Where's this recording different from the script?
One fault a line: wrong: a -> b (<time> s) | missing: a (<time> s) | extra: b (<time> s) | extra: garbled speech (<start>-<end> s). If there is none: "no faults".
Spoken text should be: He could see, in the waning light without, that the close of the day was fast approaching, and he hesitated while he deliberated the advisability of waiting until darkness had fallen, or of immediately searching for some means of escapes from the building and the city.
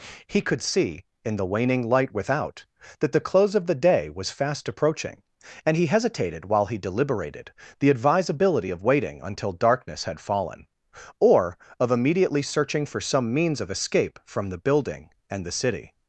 wrong: escapes -> escape (13.7 s)